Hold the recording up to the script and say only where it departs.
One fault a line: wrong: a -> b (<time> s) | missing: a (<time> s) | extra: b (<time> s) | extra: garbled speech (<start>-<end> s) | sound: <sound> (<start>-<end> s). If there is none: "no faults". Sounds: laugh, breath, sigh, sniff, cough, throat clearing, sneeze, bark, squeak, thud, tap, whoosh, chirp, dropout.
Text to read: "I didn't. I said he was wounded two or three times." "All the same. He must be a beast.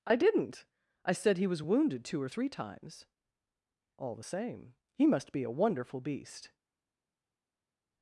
extra: wonderful (5.6 s)